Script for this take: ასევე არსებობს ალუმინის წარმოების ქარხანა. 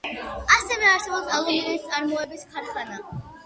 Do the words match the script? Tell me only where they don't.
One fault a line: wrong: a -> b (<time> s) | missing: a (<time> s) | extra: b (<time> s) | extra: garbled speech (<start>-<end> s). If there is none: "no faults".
no faults